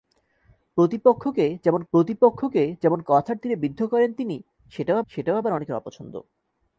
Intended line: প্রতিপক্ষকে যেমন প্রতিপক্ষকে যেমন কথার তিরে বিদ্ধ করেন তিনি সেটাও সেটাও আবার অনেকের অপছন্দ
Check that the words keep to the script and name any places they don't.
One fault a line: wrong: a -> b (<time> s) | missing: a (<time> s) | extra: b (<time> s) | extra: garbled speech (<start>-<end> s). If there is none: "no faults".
no faults